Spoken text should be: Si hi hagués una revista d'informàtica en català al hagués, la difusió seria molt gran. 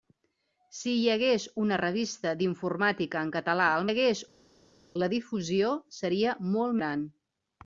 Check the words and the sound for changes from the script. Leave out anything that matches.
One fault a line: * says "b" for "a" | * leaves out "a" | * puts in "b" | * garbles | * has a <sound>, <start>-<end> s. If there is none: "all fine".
all fine